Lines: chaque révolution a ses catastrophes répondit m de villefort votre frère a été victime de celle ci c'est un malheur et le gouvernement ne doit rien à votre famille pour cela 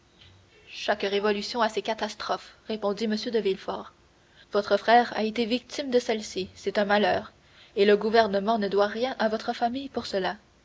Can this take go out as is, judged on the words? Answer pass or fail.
pass